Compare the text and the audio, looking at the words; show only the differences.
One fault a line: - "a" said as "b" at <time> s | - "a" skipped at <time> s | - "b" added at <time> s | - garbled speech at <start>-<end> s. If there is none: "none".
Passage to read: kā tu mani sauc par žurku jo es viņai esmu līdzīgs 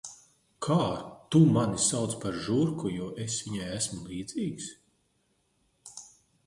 none